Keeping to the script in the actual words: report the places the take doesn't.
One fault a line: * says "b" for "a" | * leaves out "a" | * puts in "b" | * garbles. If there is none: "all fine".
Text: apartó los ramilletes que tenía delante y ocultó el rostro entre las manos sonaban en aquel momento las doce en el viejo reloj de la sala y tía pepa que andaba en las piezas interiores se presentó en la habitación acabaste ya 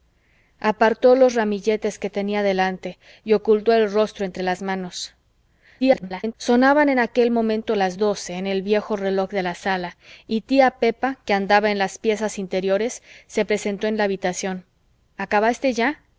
* garbles